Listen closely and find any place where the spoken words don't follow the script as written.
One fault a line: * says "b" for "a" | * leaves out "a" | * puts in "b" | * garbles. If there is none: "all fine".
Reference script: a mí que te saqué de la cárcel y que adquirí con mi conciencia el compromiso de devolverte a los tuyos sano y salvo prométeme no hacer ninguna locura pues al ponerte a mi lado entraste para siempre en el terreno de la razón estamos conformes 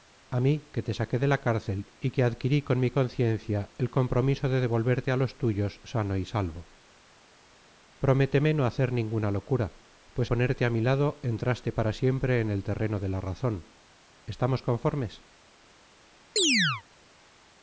* leaves out "al"